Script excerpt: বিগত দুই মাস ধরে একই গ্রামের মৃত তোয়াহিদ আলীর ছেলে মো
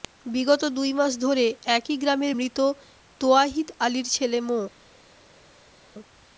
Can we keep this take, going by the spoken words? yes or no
yes